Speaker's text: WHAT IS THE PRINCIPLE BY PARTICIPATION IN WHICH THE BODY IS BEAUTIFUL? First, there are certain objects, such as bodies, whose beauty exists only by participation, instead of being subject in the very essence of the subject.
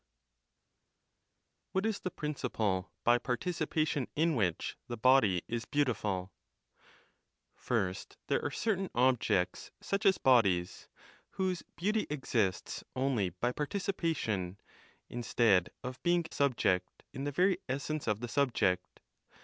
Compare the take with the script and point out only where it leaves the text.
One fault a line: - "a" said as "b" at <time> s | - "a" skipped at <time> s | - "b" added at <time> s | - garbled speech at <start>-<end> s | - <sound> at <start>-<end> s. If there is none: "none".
none